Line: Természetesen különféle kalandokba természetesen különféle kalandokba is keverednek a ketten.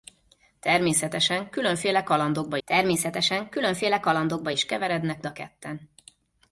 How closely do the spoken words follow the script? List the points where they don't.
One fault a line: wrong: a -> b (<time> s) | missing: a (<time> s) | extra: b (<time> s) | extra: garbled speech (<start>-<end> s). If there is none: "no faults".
no faults